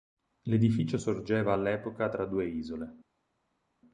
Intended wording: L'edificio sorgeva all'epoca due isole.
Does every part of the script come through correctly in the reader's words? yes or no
no